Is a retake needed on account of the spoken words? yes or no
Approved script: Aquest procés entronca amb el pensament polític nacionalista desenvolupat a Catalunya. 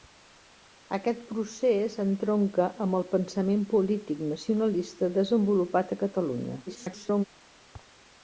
yes